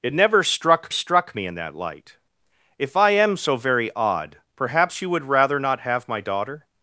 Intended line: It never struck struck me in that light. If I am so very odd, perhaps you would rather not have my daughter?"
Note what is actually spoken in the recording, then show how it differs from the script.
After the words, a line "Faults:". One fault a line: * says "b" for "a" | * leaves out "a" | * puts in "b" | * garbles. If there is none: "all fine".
It never struck struck me in that light. If I am so very odd, perhaps you would rather not have my daughter?"
Faults:
all fine